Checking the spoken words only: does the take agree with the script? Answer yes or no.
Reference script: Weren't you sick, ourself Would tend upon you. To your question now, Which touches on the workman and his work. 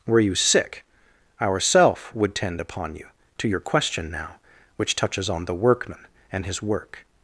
no